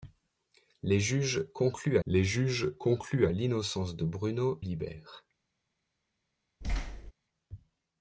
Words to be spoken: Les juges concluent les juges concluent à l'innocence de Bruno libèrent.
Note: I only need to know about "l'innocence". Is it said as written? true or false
true